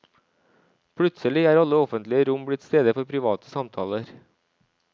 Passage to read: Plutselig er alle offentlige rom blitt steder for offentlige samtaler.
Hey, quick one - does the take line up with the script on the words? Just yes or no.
no